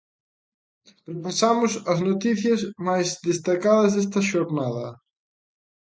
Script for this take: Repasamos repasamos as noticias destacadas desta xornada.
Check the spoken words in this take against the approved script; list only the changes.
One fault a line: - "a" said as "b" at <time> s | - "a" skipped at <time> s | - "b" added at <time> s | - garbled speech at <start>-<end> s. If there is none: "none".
- "repasamos" skipped at 1.7 s
- "máis" added at 2.9 s